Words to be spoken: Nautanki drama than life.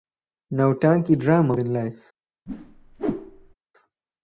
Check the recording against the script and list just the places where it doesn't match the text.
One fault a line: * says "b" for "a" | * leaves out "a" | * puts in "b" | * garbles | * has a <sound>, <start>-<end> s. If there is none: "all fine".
* has a whoosh, 2.5-3.5 s